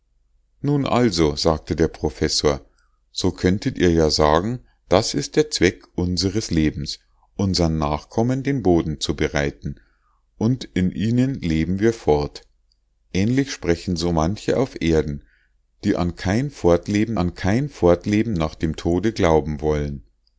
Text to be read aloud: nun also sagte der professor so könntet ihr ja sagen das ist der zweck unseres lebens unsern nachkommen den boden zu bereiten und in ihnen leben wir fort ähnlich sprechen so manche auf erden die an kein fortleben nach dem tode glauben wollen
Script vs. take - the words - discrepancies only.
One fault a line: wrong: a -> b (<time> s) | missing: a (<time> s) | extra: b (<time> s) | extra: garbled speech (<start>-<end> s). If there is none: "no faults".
extra: an kein fortleben (17.2 s)